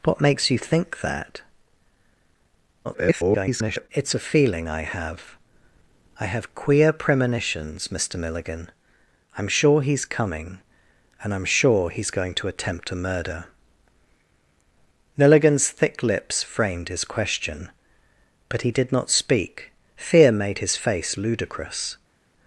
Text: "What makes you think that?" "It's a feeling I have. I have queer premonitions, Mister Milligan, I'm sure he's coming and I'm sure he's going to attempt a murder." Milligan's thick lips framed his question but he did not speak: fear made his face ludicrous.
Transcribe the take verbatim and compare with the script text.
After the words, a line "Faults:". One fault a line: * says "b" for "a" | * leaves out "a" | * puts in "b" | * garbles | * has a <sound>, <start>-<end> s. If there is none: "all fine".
"What makes you think that?" [garbled] "It's a feeling I have. I have queer premonitions, Mister Milligan, I'm sure he's coming and I'm sure he's going to attempt a murder." Milligan's thick lips framed his question but he did not speak: fear made his face ludicrous.
Faults:
* garbles